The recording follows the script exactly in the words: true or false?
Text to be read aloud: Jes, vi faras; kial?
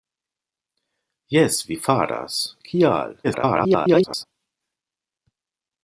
false